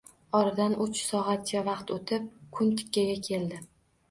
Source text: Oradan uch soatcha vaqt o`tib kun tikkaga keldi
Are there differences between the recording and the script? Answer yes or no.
no